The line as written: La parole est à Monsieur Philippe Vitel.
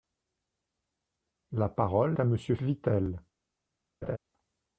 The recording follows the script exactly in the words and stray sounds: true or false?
false